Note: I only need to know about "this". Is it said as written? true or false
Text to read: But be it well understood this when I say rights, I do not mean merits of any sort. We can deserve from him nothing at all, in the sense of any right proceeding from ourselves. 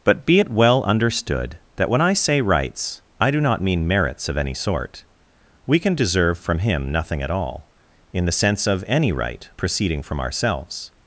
false